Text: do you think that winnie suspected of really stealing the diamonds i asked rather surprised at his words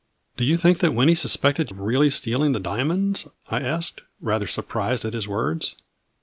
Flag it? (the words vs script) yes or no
no